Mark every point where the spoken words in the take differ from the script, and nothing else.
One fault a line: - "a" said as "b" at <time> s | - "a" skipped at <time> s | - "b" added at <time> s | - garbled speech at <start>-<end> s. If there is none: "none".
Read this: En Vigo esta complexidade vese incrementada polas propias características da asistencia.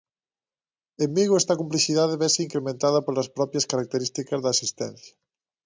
none